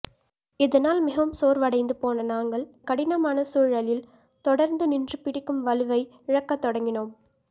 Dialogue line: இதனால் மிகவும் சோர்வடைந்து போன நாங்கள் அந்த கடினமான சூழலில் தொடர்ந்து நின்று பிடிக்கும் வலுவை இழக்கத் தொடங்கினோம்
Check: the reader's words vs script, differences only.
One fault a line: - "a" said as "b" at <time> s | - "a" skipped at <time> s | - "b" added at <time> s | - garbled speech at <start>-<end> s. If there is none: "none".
- "அந்த" skipped at 2.6 s